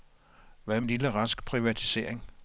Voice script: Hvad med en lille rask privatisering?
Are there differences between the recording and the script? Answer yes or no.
yes